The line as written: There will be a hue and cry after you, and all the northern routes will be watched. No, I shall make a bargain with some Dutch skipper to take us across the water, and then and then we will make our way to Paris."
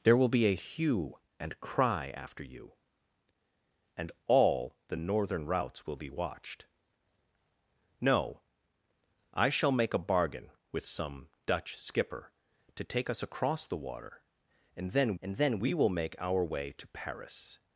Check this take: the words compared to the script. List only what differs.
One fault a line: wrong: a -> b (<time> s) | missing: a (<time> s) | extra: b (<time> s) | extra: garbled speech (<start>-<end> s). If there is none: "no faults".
no faults